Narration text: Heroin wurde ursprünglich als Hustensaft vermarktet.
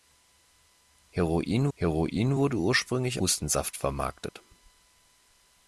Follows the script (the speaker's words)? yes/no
no